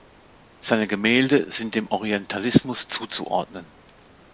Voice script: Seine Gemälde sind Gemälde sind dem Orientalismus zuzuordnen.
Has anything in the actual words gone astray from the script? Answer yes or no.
yes